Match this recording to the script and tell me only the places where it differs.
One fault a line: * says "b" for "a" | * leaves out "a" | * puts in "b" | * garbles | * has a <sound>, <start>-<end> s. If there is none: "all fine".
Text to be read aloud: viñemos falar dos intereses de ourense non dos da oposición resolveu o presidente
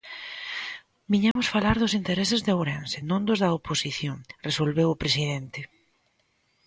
* has a dropout, 1.3-1.4 s